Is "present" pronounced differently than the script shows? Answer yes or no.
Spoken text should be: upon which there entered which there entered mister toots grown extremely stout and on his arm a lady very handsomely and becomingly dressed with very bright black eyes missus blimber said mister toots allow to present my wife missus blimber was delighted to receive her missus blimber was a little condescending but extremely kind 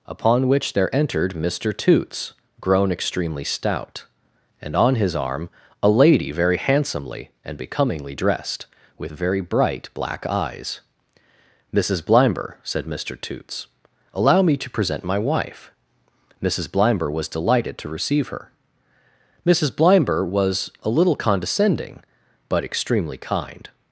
no